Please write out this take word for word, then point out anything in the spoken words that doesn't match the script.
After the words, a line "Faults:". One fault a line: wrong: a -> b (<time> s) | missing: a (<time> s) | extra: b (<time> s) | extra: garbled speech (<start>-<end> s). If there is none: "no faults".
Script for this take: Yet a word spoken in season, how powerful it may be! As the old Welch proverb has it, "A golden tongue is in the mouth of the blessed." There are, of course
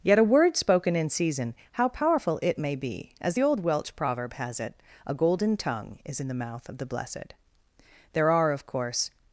Yet a word spoken in season, how powerful it may be! As the old Welch proverb has it, "A golden tongue is in the mouth of the blessed." There are, of course
Faults:
no faults